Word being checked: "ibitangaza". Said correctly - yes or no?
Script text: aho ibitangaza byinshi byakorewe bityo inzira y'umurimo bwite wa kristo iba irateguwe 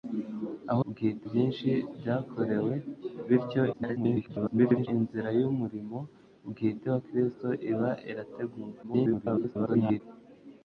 no